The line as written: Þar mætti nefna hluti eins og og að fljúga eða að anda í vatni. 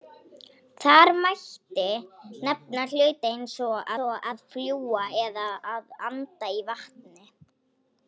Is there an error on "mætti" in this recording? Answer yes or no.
no